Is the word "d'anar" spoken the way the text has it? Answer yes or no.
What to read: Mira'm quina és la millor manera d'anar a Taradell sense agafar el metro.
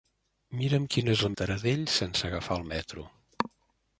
no